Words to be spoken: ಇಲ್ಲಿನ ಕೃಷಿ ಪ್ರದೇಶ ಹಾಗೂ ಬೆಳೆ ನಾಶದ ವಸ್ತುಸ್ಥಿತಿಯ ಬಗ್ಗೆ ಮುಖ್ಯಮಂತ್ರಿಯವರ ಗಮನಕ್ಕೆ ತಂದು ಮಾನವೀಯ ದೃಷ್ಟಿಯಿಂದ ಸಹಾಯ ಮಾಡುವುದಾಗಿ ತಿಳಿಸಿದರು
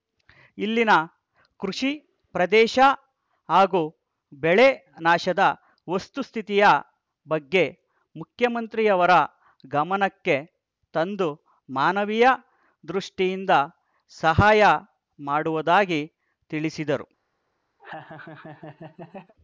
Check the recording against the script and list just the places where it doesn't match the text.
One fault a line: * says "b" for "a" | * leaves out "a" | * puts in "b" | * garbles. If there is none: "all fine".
all fine